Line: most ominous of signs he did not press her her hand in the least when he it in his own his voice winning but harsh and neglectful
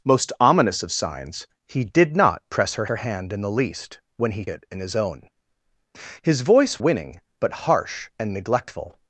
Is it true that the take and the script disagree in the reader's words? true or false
false